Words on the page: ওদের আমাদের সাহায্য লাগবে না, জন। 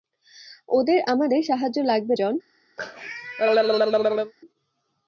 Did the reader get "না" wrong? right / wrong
wrong